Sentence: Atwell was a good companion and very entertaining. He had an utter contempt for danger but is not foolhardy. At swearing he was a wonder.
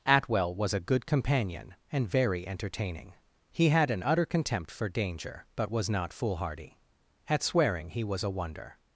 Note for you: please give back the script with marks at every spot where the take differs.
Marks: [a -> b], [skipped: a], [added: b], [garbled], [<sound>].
Atwell was a good companion and very entertaining. He had an utter contempt for danger but [is -> was] not foolhardy. At swearing he was a wonder.